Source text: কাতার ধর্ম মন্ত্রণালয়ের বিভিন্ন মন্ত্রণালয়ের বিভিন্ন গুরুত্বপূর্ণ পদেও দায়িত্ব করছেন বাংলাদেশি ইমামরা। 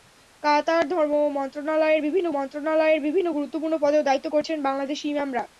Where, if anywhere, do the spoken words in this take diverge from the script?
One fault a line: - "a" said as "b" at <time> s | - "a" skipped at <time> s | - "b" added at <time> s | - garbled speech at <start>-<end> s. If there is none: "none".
none